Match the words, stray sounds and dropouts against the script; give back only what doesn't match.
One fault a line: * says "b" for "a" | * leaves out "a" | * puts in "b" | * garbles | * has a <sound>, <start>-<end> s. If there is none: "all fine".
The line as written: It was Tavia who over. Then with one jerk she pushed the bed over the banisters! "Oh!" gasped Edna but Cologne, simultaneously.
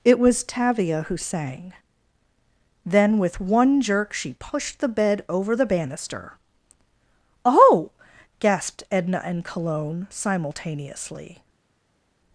* says "sang" for "over"
* says "banister" for "banisters"
* says "and" for "but"